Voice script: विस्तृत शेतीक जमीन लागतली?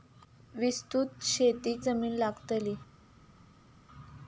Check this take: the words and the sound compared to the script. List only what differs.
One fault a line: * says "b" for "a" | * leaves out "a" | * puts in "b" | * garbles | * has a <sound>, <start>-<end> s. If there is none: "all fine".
all fine